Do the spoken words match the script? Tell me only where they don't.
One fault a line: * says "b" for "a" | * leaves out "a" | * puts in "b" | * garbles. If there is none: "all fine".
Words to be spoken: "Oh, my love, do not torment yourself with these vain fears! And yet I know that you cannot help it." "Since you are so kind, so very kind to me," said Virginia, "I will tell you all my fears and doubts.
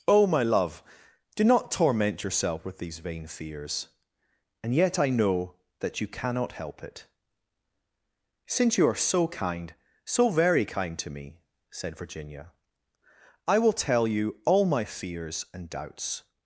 all fine